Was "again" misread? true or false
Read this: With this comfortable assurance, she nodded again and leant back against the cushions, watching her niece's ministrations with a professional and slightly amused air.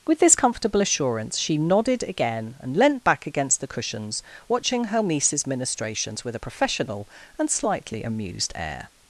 false